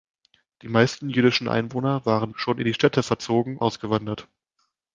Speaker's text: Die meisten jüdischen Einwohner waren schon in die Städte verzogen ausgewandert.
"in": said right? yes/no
yes